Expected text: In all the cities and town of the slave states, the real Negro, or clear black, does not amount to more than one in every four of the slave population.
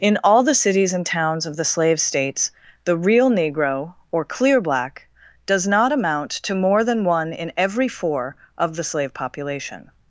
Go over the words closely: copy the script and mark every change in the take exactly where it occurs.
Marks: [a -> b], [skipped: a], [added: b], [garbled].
In all the cities and [town -> towns] of the slave states, the real Negro, or clear black, does not amount to more than one in every four of the slave population.